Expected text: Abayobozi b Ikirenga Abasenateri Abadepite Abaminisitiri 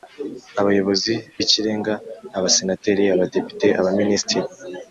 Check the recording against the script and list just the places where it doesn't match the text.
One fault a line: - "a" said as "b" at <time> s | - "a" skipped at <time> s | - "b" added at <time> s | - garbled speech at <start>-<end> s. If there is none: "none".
none